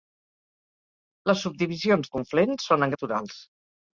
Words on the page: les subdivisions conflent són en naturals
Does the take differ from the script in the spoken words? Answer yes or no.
no